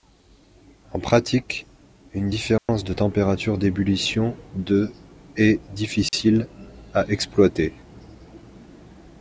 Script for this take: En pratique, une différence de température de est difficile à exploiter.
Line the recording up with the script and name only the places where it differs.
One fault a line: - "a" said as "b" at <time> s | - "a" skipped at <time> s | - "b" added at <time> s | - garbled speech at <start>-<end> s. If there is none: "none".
- "d'ébullition" added at 3.6 s